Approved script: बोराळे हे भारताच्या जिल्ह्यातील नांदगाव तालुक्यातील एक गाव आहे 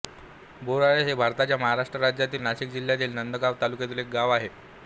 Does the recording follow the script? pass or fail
fail